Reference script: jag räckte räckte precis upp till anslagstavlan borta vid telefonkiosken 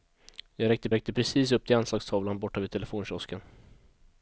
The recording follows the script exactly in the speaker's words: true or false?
true